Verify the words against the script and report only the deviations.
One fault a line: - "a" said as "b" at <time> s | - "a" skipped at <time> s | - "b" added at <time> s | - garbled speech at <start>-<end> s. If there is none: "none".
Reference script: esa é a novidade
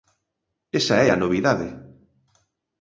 none